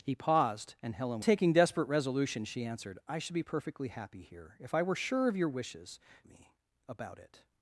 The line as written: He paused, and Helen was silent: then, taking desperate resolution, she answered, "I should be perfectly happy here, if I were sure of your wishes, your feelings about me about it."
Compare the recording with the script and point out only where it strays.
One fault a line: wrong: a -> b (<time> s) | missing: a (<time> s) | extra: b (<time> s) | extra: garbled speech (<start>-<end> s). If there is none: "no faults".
missing: was silent then (1.2 s)
missing: your feelings about (6.0 s)